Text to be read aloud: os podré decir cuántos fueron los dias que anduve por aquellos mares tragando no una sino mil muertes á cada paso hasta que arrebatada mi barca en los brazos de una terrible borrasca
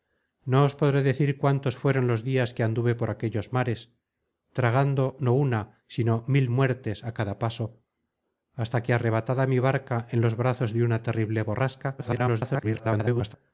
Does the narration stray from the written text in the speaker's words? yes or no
yes